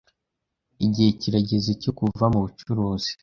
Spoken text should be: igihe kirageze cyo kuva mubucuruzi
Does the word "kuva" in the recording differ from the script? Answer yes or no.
no